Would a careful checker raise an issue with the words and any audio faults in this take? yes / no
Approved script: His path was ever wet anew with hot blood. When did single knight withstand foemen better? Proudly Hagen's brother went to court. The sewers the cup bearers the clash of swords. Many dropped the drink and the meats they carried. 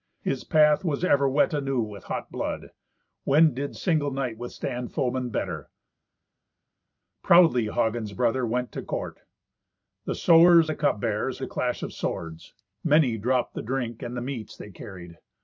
no